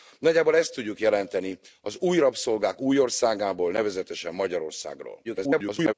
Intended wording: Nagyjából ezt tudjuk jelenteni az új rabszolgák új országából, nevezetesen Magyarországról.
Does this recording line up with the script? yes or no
no